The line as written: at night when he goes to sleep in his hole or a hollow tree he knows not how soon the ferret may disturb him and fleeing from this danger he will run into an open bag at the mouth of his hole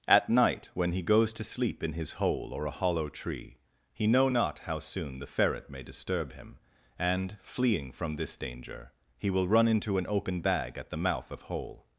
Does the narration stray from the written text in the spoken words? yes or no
yes